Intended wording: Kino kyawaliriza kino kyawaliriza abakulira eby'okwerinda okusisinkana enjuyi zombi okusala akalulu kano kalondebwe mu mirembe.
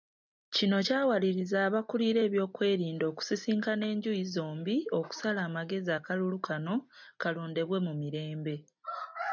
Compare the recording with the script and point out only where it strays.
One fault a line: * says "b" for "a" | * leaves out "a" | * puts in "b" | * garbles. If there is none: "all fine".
* leaves out "kino kyawaliriza"
* puts in "amagezi"